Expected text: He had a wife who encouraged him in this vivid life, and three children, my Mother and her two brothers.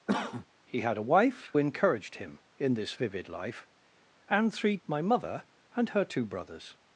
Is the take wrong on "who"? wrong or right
wrong